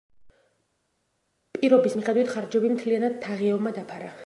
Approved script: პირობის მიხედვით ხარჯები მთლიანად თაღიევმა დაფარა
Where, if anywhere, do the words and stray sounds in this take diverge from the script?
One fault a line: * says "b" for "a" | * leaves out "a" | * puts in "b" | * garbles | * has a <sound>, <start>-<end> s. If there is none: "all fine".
all fine